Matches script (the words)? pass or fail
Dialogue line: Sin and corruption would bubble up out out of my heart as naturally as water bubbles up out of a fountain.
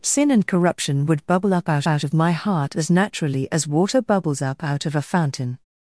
pass